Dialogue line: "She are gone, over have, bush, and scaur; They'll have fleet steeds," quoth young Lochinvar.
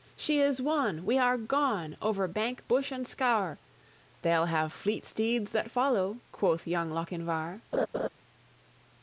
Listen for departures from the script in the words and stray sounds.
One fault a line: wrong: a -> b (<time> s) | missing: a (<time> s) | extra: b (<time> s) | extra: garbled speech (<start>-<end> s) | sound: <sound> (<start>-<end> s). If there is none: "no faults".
extra: is won we (0.4 s)
wrong: have -> bank (2.3 s)
extra: that follow (5.5 s)
sound: laugh (7.7-8.1 s)